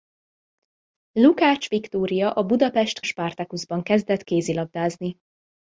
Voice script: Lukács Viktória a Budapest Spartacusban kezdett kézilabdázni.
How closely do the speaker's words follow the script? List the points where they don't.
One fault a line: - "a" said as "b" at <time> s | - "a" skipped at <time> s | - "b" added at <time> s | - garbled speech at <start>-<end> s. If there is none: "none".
none